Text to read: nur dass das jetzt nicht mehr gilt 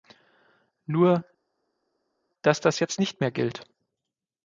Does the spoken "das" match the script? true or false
true